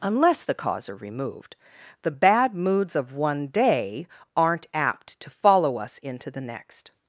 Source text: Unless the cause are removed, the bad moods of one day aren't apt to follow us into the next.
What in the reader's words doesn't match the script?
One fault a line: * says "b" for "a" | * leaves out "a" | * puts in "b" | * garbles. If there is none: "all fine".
all fine